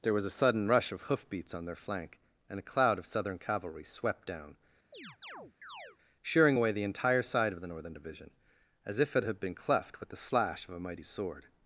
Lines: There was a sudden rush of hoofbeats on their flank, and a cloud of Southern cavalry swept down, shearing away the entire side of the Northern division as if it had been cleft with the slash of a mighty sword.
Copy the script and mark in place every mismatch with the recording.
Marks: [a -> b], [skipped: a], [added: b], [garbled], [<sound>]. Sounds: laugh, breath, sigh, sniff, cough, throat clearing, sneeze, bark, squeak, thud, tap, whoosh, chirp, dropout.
There was a sudden rush of hoofbeats on their flank, and a cloud of Southern cavalry swept down, [chirp] shearing away the entire side of the Northern division as if it had been cleft with the slash of a mighty sword.